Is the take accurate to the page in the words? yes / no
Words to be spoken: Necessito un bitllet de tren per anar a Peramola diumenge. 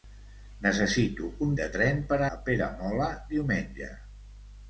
no